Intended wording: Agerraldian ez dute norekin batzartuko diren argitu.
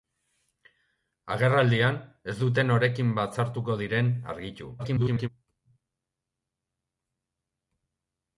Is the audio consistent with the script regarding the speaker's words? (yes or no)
no